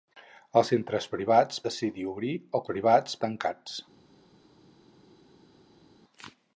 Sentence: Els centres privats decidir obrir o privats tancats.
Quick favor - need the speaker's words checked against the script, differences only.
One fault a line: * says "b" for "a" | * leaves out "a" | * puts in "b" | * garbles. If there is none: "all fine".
all fine